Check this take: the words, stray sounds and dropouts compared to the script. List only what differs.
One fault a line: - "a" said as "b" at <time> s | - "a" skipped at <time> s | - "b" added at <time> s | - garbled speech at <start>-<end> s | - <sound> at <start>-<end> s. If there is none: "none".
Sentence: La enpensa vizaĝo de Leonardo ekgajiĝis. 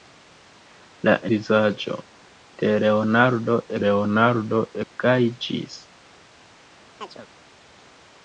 - "enpensa" skipped at 1.1 s
- "Leonardo" added at 3.9 s
- chirp at 7.0-7.3 s